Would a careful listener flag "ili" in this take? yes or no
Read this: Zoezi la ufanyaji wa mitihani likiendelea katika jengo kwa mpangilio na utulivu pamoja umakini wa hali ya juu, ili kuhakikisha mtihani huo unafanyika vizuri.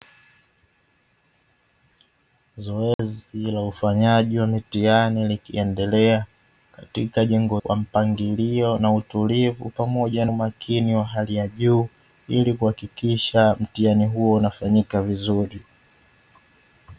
no